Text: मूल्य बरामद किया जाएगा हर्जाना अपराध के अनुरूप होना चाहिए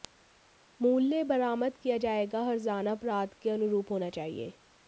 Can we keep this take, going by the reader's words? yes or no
yes